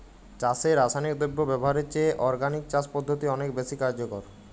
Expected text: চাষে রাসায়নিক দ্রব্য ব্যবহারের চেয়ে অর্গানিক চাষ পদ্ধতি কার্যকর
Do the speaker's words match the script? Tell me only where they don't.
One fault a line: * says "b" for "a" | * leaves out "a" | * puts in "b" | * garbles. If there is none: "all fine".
* puts in "অনেক বেশি"